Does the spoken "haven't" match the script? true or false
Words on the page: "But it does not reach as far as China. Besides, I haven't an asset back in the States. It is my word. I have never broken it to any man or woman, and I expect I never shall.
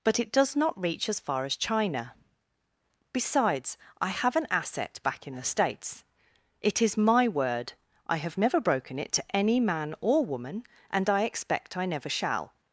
false